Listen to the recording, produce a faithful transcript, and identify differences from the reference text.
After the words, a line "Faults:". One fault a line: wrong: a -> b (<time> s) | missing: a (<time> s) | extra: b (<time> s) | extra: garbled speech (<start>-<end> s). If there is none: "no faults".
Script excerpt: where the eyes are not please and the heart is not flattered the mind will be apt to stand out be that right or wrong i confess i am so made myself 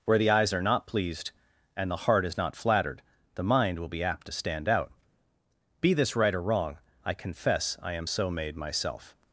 where the eyes are not pleased and the heart is not flattered the mind will be apt to stand out be this right or wrong i confess i am so made myself
Faults:
wrong: please -> pleased (0.9 s)
wrong: that -> this (5.9 s)